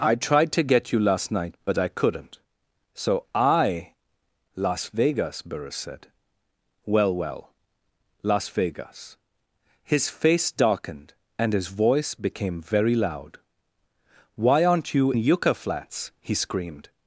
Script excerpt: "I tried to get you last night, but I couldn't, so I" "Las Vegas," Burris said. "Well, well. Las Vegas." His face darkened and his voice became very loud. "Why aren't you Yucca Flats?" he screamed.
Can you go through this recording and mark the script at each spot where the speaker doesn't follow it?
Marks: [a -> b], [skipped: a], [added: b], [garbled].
"I tried to get you last night, but I couldn't, so I" "Las Vegas," Burris said. "Well, well. Las Vegas." His face darkened and his voice became very loud. "Why aren't you Yucca Flats?" he screamed.